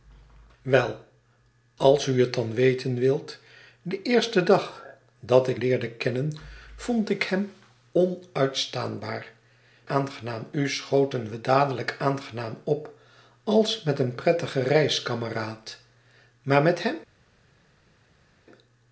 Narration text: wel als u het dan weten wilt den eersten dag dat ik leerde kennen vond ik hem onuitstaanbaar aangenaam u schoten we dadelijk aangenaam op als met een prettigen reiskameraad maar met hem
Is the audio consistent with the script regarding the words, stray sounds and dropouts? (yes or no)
yes